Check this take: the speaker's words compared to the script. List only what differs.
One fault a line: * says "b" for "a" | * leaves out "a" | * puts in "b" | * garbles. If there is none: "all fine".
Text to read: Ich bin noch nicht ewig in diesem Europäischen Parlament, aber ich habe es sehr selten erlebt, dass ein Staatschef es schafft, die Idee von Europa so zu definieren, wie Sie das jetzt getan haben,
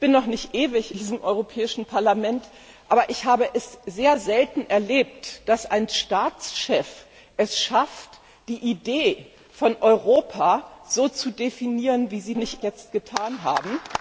* leaves out "in"
* says "nicht" for "das"